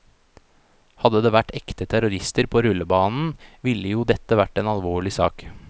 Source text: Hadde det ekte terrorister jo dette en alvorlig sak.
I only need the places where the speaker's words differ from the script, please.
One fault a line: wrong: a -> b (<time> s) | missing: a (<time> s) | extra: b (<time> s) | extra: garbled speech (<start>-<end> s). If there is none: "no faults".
extra: vært (1.3 s)
extra: på rullebanen ville (2.5 s)
extra: vært (4.4 s)